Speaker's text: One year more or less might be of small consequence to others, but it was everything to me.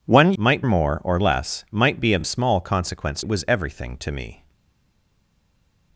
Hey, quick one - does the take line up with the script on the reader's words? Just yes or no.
no